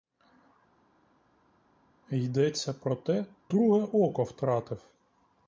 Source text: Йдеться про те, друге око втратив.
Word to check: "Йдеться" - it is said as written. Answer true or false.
true